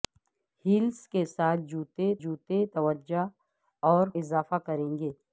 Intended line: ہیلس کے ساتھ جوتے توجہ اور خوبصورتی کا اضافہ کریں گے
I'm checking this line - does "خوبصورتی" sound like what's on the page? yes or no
no